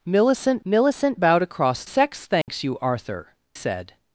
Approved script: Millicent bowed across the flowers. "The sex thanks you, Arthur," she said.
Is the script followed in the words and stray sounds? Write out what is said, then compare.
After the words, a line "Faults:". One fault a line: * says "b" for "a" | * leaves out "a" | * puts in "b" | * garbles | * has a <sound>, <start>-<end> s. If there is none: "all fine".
Millicent millicent bowed across sex thanks you, Arthur," said.
Faults:
* puts in "millicent"
* leaves out "the flowers The"
* has a dropout, 2.4-2.5 s
* leaves out "she"